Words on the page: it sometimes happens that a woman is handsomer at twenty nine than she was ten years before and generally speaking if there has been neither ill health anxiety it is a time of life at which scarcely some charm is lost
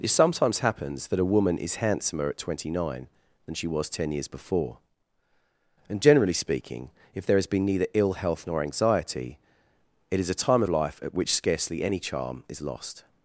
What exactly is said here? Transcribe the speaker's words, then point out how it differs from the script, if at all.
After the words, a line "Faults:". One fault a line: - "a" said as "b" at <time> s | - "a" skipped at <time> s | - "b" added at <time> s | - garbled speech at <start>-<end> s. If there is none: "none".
it sometimes happens that a woman is handsomer at twenty nine than she was ten years before and generally speaking if there has been neither ill health nor anxiety it is a time of life at which scarcely any charm is lost
Faults:
- "nor" added at 8.5 s
- "some" said as "any" at 11.8 s